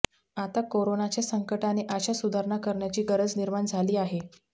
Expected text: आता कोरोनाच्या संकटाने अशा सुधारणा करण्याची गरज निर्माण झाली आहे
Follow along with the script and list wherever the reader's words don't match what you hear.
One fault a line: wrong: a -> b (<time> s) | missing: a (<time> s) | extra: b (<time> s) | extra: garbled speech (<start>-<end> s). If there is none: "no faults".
no faults